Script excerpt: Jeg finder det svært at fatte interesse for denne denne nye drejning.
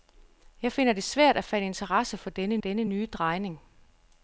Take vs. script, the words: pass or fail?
pass